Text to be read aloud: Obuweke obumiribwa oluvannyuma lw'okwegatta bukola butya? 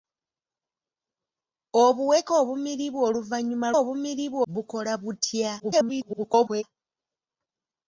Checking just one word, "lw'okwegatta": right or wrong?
wrong